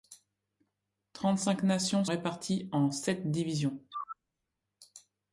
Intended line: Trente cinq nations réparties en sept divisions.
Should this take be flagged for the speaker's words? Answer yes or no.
no